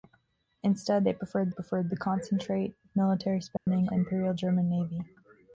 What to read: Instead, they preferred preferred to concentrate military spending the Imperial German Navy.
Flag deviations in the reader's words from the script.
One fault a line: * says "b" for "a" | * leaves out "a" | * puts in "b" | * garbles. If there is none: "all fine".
all fine